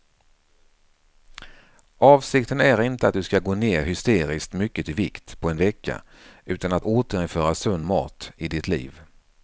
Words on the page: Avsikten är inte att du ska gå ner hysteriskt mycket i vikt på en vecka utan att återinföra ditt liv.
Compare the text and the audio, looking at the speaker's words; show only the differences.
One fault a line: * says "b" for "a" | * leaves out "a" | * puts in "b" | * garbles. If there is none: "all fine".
* puts in "sund mat i"